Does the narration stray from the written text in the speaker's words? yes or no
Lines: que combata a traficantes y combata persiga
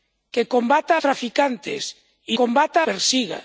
no